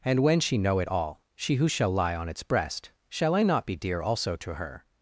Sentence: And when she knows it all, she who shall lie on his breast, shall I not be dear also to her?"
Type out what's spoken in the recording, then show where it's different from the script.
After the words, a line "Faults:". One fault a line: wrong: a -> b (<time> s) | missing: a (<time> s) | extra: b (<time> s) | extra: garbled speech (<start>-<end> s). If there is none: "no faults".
And when she know it all, she who shall lie on its breast, shall I not be dear also to her?"
Faults:
wrong: knows -> know (0.6 s)
wrong: his -> its (2.3 s)